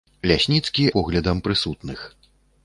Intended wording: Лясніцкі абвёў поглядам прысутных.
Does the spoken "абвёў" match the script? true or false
false